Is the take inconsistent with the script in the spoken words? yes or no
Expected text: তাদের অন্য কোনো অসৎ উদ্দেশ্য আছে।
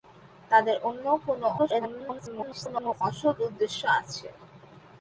yes